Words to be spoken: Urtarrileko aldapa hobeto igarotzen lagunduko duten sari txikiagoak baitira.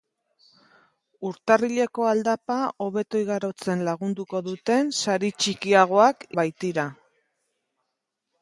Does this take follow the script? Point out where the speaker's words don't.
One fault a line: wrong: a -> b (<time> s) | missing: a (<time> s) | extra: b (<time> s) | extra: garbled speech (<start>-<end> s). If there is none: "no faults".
no faults